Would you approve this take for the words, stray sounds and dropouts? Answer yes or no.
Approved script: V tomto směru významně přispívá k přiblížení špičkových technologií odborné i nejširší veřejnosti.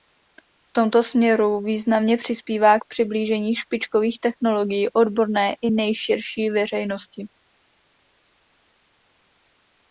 yes